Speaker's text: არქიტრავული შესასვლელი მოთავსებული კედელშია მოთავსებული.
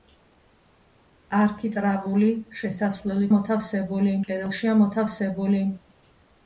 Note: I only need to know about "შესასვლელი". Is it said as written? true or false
true